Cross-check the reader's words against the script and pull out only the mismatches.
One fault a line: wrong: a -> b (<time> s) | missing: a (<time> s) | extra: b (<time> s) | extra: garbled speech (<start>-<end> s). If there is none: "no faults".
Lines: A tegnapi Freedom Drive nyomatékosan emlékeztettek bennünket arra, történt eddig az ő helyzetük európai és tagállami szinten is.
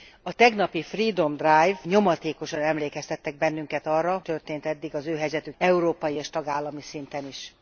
no faults